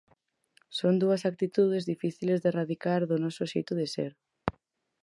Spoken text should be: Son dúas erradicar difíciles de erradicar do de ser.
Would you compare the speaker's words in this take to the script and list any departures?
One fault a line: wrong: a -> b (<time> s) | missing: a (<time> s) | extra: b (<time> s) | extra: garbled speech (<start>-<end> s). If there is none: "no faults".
wrong: erradicar -> actitudes (1.3 s)
extra: noso xeito (3.2 s)